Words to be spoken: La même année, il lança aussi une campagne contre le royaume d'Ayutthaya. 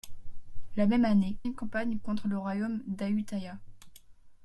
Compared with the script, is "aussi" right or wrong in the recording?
wrong